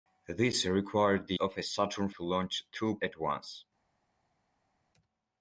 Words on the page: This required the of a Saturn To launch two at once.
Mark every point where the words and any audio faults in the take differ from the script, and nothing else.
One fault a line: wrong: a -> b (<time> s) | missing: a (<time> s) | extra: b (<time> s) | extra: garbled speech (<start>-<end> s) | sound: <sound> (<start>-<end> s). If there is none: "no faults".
no faults